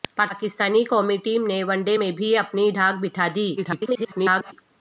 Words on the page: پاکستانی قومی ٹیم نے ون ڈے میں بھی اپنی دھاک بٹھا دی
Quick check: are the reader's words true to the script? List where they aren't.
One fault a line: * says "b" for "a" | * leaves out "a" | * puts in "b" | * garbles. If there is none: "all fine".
* garbles